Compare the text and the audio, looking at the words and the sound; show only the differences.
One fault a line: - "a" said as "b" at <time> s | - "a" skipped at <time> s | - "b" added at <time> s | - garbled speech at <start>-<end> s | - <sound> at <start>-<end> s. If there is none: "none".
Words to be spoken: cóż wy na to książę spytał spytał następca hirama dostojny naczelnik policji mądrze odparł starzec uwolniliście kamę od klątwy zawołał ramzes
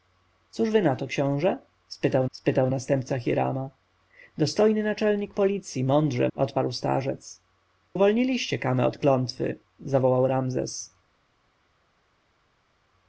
none